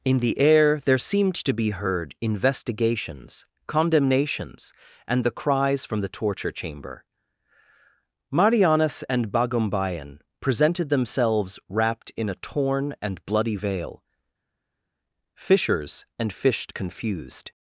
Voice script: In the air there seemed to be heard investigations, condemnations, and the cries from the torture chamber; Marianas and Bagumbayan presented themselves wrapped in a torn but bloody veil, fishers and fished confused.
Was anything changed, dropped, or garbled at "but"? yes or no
yes